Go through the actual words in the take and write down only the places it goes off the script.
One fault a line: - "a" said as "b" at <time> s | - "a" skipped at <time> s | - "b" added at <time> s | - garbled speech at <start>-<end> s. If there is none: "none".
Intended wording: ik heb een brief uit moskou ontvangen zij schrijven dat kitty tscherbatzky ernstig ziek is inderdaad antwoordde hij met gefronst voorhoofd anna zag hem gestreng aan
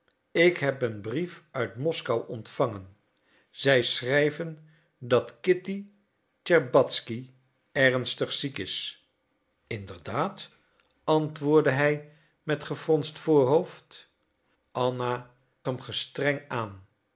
- "zag" skipped at 15.3 s